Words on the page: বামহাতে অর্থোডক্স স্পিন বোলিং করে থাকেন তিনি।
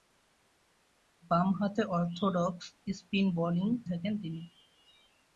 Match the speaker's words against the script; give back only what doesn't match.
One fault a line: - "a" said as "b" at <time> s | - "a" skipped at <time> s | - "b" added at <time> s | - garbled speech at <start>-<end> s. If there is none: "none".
- "করে" skipped at 3.7 s